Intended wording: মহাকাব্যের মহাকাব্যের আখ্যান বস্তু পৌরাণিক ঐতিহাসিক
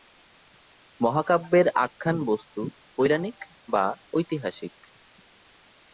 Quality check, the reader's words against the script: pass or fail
fail